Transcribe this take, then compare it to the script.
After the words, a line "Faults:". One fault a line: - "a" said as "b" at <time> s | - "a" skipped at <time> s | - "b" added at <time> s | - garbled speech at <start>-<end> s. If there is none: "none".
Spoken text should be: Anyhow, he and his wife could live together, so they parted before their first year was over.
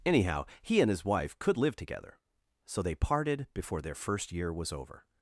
Anyhow, he and his wife could live together, so they parted before their first year was over.
Faults:
none